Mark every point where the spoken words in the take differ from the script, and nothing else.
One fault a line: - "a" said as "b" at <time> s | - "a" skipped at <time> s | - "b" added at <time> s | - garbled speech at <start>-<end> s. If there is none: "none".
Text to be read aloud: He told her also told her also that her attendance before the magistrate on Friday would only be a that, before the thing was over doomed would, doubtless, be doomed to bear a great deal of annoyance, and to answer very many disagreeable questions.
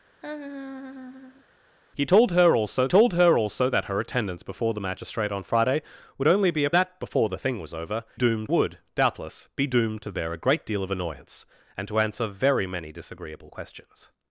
none